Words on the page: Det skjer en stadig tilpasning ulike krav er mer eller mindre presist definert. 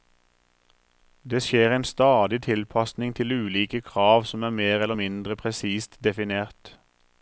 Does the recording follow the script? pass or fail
fail